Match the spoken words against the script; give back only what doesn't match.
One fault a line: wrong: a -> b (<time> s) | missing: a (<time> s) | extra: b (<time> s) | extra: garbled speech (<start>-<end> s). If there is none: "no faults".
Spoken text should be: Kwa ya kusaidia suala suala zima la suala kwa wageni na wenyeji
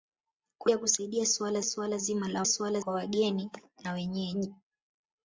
no faults